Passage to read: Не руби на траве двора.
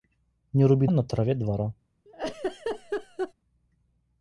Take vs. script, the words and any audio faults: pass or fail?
fail